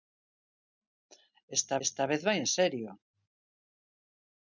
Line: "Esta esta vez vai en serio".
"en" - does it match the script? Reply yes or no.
yes